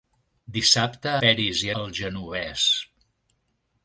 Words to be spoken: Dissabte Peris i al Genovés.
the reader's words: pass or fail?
pass